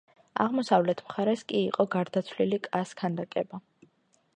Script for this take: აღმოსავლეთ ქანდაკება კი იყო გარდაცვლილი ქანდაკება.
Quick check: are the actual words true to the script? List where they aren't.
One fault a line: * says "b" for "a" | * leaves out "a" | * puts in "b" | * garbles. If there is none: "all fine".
* says "მხარეს" for "ქანდაკება"
* puts in "კას"